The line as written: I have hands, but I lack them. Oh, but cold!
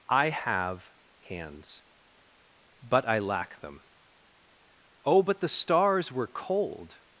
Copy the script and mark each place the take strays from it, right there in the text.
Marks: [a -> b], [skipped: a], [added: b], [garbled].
I have hands, but I lack them. Oh, but [added: the stars were] cold!